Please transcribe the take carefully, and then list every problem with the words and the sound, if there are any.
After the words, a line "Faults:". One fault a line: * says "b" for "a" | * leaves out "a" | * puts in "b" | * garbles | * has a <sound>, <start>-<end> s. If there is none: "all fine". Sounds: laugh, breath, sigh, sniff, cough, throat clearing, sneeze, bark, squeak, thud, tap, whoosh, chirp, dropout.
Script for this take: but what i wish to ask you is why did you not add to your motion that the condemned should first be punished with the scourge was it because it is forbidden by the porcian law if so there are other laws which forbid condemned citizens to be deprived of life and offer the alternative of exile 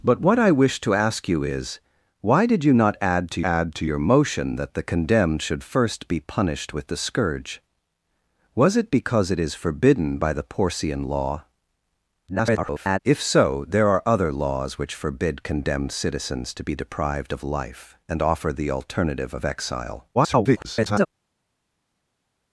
but what i wish to ask you is why did you not add to add to your motion that the condemned should first be punished with the scourge was it because it is forbidden by the porcian law [garbled] if so there are other laws which forbid condemned citizens to be deprived of life and offer the alternative of exile [garbled]
Faults:
* puts in "add to"
* garbles
* garbles